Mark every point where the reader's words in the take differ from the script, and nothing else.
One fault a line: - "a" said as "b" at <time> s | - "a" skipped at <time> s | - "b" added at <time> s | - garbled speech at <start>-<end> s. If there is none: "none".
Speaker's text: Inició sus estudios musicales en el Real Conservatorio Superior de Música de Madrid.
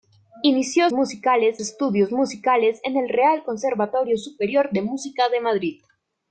- "sus" said as "musicales" at 0.9 s